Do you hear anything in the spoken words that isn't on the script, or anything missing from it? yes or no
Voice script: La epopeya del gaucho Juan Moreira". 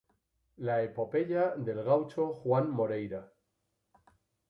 no